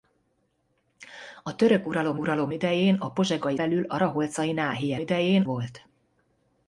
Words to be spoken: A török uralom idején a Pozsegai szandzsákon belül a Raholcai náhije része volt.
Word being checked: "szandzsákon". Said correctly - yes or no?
no